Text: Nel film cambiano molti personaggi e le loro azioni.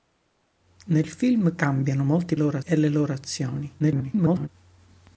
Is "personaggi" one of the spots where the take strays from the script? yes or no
yes